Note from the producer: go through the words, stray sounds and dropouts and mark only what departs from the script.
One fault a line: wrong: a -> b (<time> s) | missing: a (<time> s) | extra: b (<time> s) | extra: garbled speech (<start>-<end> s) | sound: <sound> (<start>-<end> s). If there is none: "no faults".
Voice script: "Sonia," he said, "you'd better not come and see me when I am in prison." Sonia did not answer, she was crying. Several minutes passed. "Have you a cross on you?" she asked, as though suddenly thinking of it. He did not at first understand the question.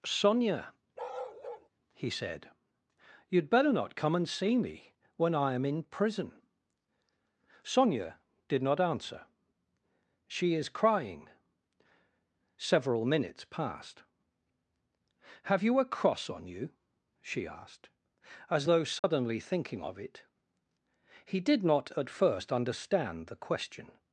sound: bark (1.0-1.7 s)
wrong: was -> is (10.5 s)
sound: dropout (19.0-19.0 s)